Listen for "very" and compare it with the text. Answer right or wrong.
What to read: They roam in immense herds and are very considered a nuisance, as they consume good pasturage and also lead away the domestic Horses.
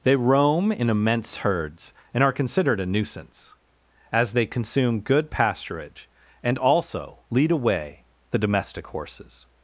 wrong